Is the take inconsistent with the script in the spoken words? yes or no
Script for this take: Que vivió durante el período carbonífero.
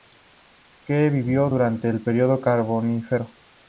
no